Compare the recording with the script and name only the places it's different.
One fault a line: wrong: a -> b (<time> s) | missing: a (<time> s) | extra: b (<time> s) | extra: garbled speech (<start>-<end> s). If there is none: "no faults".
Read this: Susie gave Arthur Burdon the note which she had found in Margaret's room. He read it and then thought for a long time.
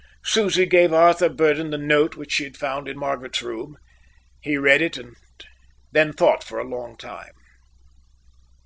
no faults